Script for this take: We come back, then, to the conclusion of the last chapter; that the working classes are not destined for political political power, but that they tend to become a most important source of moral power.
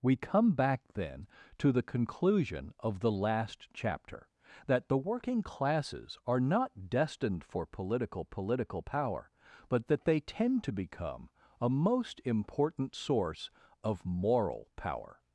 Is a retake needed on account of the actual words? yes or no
no